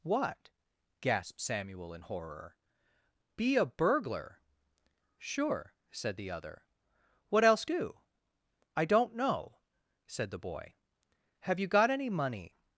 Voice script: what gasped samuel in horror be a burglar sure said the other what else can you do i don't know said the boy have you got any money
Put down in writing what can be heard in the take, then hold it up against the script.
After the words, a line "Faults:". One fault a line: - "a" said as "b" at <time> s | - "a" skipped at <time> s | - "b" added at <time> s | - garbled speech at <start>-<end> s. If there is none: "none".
what gasped samuel in horror be a burglar sure said the other what else do i don't know said the boy have you got any money
Faults:
- "can you" skipped at 7.7 s